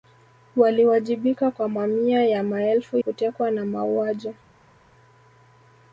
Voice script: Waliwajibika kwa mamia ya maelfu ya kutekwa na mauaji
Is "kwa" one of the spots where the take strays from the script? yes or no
no